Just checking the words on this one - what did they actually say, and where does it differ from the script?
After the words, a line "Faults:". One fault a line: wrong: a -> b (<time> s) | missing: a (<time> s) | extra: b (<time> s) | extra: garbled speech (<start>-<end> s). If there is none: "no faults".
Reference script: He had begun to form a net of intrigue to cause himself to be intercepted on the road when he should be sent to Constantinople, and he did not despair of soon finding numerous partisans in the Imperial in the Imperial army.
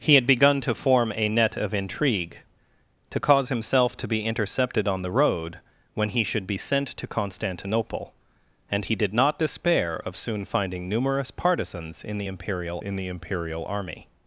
He had begun to form a net of intrigue to cause himself to be intercepted on the road when he should be sent to Constantinople, and he did not despair of soon finding numerous partisans in the Imperial in the Imperial army.
Faults:
no faults